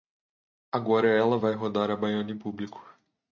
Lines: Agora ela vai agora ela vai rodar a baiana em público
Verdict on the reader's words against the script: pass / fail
fail